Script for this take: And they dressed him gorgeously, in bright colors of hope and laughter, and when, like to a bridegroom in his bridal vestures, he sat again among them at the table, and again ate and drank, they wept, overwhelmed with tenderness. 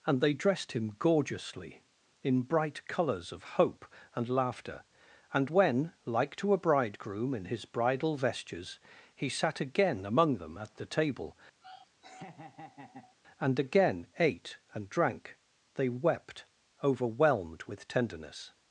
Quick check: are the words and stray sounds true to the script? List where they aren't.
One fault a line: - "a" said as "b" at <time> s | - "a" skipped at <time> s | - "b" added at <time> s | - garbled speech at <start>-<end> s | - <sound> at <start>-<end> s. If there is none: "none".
- laugh at 11.6-13.2 s